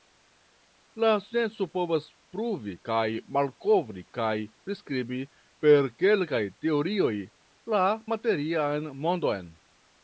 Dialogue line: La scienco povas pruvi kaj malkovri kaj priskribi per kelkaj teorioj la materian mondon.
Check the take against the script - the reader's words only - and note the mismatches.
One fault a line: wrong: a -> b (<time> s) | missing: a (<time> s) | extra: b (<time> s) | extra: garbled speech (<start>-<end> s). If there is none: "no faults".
no faults